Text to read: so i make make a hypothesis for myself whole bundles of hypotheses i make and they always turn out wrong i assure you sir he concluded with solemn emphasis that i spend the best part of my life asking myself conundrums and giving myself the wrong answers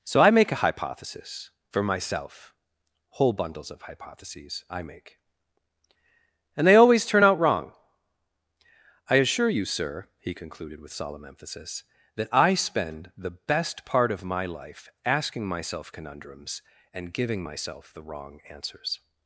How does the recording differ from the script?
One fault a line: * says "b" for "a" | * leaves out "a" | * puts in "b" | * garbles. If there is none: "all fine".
* leaves out "make"